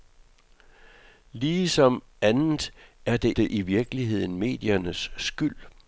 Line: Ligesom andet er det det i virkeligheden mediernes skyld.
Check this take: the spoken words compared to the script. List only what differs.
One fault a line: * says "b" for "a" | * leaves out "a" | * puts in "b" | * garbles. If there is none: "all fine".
all fine